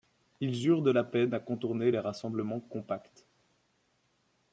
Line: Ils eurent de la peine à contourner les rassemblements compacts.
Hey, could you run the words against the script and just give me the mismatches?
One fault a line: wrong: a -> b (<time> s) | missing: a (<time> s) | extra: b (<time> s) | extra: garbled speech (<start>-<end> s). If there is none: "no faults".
no faults